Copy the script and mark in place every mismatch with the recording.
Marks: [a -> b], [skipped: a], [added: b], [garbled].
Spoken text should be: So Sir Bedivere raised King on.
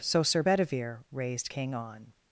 So Sir Bedivere raised King on.